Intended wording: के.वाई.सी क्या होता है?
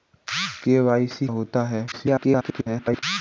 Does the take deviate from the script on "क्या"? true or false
true